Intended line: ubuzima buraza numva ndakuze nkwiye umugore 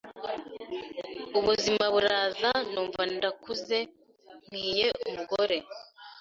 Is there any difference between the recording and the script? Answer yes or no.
no